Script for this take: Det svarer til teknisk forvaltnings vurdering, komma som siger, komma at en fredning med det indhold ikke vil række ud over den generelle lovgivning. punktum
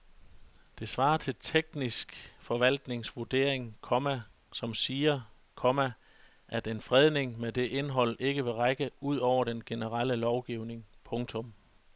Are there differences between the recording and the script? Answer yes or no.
no